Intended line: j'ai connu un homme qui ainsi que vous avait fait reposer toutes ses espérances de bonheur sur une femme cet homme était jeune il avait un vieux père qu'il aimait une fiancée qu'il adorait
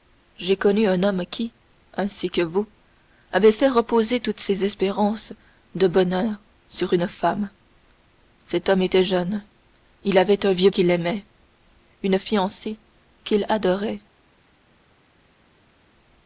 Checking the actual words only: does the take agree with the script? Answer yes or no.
no